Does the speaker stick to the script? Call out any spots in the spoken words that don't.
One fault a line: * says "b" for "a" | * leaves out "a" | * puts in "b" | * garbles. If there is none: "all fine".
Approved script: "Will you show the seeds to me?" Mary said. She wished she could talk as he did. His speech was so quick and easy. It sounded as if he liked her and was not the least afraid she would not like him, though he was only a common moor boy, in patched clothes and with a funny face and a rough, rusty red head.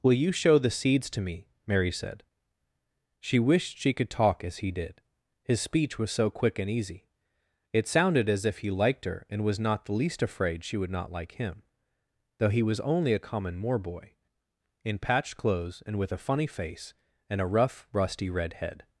all fine